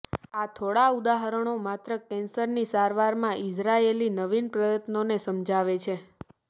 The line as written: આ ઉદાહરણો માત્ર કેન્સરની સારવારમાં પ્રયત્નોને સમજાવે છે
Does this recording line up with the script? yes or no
no